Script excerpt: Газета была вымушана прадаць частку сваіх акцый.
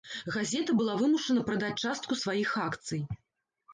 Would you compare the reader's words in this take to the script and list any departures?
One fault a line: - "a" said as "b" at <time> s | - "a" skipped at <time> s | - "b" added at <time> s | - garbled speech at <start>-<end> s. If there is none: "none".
none